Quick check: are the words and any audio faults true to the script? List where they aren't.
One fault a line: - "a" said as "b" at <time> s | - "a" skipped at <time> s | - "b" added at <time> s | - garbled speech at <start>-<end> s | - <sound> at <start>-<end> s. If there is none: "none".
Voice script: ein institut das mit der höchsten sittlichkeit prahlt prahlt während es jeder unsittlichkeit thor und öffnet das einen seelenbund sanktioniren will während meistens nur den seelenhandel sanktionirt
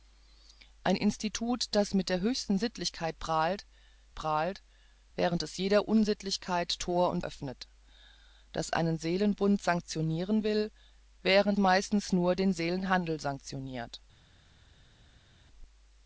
none